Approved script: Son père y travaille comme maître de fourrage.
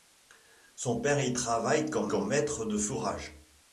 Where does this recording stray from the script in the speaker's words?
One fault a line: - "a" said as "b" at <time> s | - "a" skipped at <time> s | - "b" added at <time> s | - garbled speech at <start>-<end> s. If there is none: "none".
- "comme" added at 2.1 s